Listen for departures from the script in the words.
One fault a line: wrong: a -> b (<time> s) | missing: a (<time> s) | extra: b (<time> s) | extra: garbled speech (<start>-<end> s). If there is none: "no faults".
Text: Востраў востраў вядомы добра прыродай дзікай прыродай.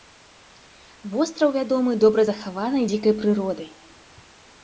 missing: востраў (1.5 s)
wrong: прыродай -> захаванай (2.3 s)